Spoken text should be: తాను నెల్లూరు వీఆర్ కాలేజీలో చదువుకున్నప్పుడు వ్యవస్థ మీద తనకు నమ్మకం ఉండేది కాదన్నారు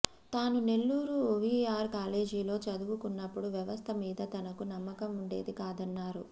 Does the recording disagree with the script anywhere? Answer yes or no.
no